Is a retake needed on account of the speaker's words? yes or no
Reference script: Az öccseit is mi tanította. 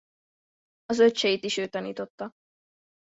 yes